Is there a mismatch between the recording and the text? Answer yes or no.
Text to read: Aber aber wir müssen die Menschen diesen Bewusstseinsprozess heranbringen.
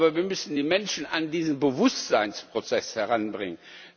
yes